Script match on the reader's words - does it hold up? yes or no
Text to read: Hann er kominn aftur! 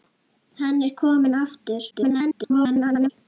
no